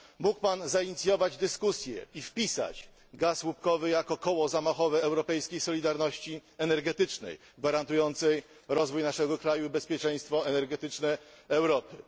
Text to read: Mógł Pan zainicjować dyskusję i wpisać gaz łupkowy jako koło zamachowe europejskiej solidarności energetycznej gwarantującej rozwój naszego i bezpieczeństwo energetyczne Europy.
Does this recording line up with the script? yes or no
no